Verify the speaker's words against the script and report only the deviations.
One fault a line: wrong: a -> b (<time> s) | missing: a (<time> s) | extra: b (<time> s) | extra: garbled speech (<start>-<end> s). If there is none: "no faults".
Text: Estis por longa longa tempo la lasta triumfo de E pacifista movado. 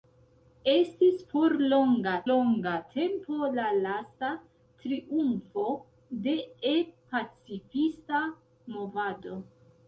no faults